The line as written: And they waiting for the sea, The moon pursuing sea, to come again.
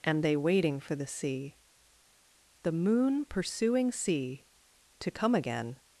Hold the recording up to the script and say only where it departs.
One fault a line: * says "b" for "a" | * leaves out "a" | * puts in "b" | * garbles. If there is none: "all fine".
all fine